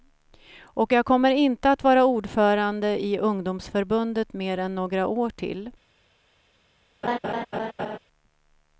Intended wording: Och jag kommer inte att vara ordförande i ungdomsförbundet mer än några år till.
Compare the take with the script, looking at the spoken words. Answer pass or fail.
pass